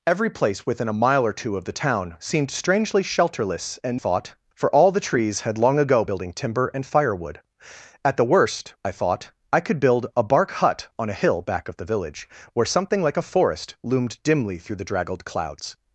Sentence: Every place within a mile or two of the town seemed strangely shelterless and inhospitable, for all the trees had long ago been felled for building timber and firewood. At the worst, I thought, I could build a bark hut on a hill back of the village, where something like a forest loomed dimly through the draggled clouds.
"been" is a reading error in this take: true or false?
true